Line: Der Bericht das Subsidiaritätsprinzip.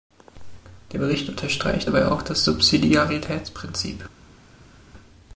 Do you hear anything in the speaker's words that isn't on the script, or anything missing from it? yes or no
yes